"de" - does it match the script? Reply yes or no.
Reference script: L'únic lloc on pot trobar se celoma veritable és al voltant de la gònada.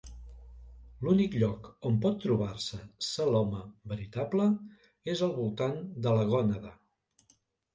yes